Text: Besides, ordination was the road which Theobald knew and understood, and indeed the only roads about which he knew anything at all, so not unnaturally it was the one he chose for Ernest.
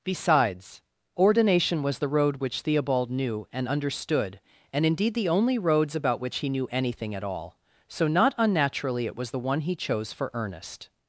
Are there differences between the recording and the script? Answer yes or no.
no